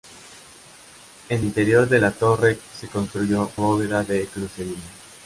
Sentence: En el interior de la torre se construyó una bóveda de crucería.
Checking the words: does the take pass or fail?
fail